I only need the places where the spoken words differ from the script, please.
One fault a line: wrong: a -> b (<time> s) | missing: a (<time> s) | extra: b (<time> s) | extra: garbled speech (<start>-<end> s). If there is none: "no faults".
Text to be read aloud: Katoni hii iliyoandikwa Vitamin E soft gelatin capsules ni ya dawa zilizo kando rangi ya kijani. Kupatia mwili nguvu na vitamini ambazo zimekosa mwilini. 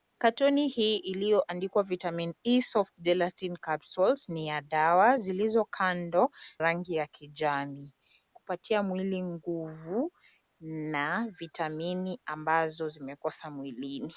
no faults